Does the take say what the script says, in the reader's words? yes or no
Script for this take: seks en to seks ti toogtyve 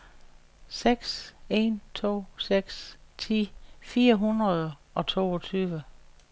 no